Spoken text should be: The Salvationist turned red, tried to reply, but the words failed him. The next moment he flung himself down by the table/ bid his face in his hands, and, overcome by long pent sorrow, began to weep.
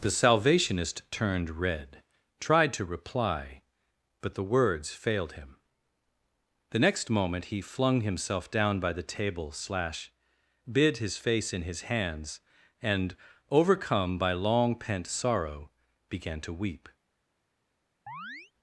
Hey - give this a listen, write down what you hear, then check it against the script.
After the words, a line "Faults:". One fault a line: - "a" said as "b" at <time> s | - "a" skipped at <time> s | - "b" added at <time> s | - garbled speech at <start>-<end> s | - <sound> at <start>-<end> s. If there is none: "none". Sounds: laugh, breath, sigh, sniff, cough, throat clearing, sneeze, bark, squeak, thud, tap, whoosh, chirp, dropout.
The Salvationist turned red, tried to reply, but the words failed him. The next moment he flung himself down by the table/ slash bid his face in his hands, and, overcome by long pent sorrow, began to weep.
Faults:
- "slash" added at 9.5 s
- chirp at 18.1-18.5 s